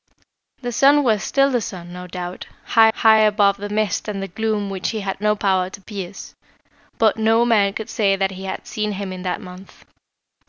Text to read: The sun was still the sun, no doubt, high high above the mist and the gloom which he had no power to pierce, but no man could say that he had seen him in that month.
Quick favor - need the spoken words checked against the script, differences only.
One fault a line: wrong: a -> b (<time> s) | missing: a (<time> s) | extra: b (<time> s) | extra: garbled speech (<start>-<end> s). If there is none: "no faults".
no faults